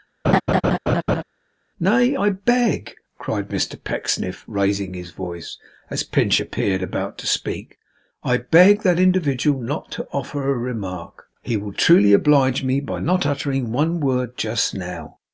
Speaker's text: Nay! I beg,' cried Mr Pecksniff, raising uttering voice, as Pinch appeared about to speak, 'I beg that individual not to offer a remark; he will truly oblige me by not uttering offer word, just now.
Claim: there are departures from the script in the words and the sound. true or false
true